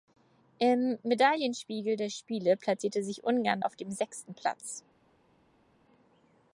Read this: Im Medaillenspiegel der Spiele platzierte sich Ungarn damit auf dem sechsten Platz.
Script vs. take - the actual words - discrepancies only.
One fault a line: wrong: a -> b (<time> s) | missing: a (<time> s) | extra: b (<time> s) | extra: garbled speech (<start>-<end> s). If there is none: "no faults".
missing: damit (3.6 s)